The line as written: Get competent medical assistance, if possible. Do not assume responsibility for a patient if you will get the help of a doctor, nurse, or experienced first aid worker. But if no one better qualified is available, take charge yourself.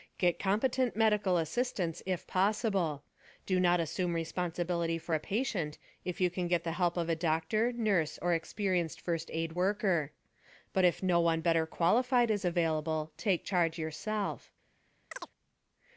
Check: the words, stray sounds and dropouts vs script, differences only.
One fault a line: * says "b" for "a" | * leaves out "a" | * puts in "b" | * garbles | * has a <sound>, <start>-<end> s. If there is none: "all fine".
* says "can" for "will"
* has a chirp, 15.1-15.3 s